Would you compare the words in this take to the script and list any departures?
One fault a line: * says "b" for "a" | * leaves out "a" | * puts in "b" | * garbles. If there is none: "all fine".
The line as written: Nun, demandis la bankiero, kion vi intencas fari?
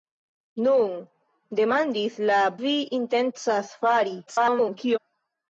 * leaves out "bankiero kion"
* garbles